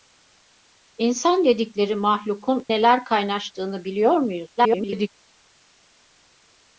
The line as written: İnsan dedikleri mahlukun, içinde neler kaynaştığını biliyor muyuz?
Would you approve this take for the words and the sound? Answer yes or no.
no